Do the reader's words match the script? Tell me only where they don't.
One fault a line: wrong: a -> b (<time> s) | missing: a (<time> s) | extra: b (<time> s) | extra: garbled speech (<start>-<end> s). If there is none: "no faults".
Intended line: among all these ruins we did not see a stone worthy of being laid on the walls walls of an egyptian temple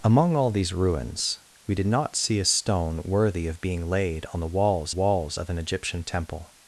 no faults